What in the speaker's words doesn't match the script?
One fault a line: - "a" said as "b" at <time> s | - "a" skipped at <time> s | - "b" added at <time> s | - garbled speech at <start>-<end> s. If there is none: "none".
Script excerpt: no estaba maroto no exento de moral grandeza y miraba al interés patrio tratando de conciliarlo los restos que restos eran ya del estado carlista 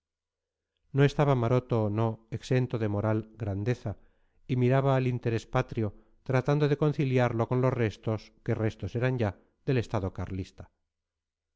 - "con" added at 7.5 s